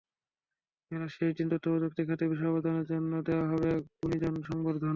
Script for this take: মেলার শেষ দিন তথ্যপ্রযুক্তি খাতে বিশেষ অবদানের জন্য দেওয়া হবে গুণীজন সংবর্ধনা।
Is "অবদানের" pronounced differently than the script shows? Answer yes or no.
no